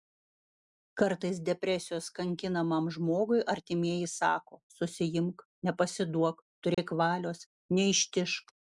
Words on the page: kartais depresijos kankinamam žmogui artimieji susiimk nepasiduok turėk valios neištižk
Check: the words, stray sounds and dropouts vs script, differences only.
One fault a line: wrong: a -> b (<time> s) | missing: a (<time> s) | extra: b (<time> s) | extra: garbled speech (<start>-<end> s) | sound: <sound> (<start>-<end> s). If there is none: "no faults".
extra: sako (4.2 s)
sound: dropout (6.7-6.8 s)